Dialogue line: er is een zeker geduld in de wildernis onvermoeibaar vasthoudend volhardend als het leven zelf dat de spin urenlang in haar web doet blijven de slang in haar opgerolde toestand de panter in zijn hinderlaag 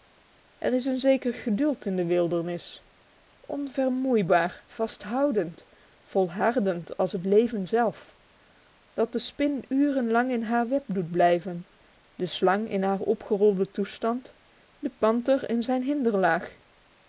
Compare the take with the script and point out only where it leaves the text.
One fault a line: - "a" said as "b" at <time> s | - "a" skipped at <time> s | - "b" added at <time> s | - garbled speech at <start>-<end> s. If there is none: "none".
none